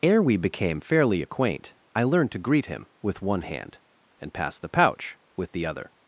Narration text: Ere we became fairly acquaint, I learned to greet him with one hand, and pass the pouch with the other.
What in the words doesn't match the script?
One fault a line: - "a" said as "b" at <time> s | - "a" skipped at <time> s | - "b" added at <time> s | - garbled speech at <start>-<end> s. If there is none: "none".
none